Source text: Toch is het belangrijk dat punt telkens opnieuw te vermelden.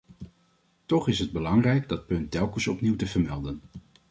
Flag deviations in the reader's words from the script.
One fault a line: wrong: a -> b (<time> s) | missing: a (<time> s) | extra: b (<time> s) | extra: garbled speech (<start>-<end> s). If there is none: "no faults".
no faults